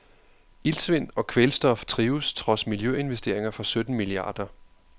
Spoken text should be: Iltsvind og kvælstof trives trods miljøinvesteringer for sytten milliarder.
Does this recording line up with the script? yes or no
yes